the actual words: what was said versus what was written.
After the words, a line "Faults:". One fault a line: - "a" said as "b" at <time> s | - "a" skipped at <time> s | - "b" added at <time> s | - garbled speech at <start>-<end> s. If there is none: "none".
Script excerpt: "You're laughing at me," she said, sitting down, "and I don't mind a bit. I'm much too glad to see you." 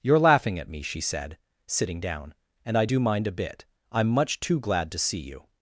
"You're laughing at me," she said, sitting down, "and I do mind a bit. I'm much too glad to see you."
Faults:
- "don't" said as "do" at 2.8 s